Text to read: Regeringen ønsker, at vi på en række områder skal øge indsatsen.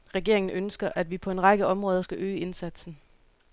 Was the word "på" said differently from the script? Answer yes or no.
no